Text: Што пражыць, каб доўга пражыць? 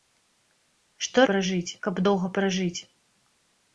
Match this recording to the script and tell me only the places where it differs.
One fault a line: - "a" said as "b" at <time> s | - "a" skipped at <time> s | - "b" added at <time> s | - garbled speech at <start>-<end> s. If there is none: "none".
none